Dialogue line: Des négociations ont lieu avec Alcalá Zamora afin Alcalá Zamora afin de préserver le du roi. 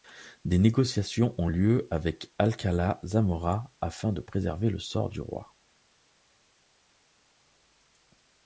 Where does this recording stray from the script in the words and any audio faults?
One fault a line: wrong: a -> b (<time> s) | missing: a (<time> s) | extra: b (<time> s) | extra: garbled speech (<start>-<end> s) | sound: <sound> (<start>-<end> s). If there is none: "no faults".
missing: Alcalá Zamora afin (4.1 s)
extra: sort (4.8 s)